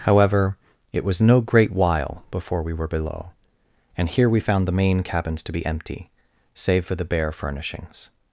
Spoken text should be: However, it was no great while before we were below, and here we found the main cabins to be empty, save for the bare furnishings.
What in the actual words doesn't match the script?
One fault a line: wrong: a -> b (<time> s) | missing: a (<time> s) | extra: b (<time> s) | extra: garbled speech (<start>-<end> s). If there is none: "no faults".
no faults